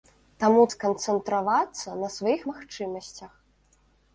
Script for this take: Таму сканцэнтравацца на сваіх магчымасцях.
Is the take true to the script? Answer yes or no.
yes